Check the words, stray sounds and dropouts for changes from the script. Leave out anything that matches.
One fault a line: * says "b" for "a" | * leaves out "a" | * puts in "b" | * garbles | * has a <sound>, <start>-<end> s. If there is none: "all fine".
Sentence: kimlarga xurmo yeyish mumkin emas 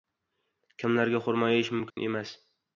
* has a dropout, 1.9-2.0 s